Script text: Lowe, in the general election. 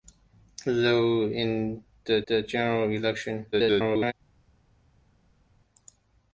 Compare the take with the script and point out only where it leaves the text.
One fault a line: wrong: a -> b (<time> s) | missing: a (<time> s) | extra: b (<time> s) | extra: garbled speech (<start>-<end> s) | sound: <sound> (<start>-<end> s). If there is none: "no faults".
extra: the (2.3 s)
extra: garbled speech (3.5-4.1 s)